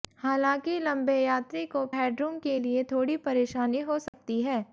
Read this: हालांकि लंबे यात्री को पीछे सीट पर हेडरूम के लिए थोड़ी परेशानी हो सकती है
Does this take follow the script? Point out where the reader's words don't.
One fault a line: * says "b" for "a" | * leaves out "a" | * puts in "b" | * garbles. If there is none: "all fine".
* leaves out "पीछे सीट पर"